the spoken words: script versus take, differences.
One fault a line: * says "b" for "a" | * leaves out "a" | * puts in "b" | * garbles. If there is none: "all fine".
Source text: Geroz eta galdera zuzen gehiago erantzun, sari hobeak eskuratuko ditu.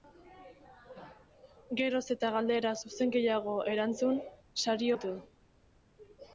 * leaves out "hobeak eskuratuko"